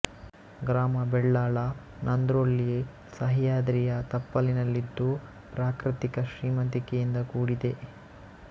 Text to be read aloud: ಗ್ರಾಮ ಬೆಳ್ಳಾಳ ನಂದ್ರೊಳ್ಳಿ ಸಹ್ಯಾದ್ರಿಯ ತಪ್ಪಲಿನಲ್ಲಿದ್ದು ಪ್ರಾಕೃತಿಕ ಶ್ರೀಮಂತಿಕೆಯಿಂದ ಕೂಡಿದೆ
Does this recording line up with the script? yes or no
yes